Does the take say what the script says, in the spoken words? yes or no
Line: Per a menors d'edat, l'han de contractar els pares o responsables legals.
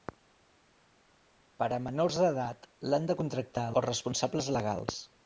no